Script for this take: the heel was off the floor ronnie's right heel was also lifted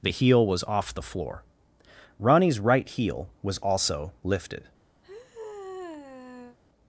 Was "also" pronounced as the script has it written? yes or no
yes